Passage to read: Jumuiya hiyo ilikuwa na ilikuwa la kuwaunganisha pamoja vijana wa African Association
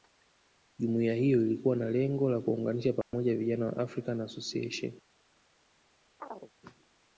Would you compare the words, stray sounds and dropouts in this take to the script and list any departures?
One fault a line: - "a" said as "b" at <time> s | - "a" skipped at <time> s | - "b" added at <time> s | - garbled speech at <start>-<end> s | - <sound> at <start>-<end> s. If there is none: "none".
- "ilikuwa" said as "lengo" at 1.9 s
- dropout at 3.0-3.1 s
- chirp at 6.2-6.5 s